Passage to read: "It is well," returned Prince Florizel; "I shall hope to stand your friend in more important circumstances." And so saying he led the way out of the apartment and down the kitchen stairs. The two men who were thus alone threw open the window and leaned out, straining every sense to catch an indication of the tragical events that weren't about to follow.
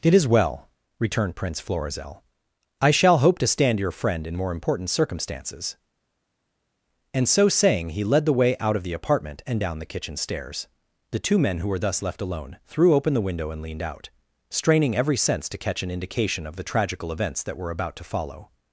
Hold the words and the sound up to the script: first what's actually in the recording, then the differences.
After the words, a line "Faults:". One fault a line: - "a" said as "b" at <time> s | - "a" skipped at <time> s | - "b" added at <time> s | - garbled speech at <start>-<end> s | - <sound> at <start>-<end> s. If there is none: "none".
"It is well," returned Prince Florizel; "I shall hope to stand your friend in more important circumstances." And so saying he led the way out of the apartment and down the kitchen stairs. The two men who were thus left alone threw open the window and leaned out, straining every sense to catch an indication of the tragical events that were about to follow.
Faults:
- "left" added at 12.0 s
- "weren't" said as "were" at 17.6 s